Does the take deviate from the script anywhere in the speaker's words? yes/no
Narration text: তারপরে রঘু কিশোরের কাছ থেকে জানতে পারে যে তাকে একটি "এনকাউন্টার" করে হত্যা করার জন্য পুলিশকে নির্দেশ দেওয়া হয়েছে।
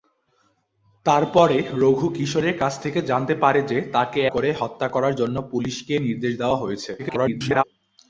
yes